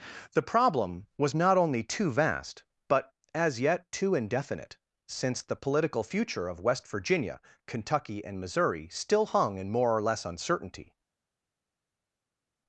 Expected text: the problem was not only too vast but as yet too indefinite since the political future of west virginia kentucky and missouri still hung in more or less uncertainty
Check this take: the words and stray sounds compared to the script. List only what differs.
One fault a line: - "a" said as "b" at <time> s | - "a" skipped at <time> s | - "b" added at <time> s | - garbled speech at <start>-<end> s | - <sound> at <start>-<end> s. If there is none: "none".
none